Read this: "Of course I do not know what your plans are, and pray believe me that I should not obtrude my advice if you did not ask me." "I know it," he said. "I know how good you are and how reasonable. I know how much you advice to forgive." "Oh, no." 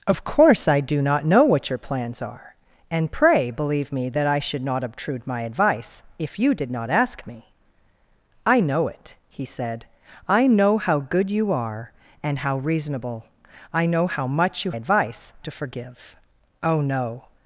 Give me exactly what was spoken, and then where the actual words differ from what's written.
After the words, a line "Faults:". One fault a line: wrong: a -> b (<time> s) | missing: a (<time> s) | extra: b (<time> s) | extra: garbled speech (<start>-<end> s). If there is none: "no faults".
"Of course I do not know what your plans are, and pray believe me that I should not obtrude my advice if you did not ask me." "I know it," he said. "I know how good you are and how reasonable. I know how much you advice to forgive." "Oh, no."
Faults:
no faults